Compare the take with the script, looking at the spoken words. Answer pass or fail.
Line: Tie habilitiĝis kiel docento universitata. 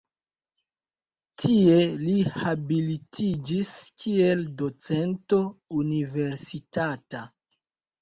fail